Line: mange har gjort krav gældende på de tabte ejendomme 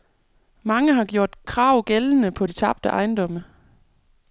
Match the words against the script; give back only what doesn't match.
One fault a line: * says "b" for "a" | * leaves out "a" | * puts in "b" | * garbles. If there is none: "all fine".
all fine